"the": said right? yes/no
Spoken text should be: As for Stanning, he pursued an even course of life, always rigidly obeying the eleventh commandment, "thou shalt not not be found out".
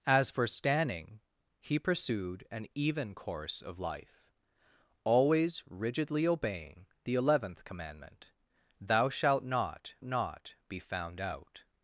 yes